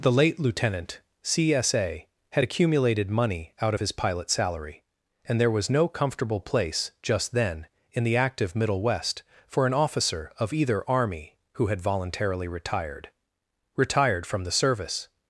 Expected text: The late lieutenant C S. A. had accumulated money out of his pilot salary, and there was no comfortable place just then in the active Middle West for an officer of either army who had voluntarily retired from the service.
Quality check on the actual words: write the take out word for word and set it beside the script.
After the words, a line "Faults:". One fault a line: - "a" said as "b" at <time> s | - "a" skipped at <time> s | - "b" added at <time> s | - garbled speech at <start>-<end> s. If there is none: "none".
The late lieutenant C S. A. had accumulated money out of his pilot salary, and there was no comfortable place just then in the active Middle West for an officer of either army who had voluntarily retired retired from the service.
Faults:
- "retired" added at 13.8 s